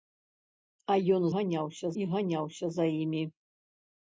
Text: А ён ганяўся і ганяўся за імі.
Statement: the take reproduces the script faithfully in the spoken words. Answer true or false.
true